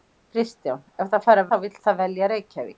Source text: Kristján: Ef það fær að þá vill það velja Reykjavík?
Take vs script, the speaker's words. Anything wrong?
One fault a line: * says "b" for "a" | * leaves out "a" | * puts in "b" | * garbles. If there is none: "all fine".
all fine